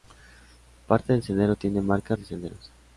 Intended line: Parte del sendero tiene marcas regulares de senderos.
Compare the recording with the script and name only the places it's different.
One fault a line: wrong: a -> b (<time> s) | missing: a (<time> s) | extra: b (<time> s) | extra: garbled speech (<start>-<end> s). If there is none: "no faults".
missing: regulares (2.2 s)